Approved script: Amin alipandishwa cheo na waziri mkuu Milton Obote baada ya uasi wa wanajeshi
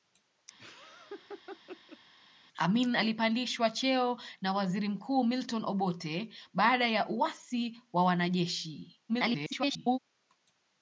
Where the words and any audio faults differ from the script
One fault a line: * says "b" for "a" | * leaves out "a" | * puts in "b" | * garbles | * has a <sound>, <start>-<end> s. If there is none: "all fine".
* has a laugh, 0.6-2.0 s
* garbles